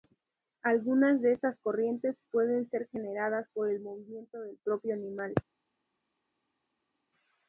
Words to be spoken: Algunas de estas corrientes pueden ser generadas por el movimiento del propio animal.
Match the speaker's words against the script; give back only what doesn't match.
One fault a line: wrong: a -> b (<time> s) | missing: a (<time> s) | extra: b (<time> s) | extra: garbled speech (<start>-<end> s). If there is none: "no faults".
no faults